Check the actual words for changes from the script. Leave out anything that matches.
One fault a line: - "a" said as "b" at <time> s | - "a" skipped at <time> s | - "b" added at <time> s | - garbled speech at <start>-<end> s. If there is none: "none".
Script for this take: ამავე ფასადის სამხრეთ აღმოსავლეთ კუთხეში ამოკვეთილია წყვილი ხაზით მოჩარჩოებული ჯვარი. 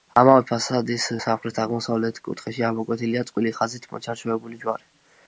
none